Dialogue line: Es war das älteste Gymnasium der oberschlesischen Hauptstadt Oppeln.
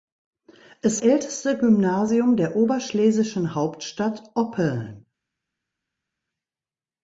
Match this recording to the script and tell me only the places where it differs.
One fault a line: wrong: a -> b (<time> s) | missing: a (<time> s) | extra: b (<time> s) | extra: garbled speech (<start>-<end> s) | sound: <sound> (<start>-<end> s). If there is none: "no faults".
missing: war das (1.0 s)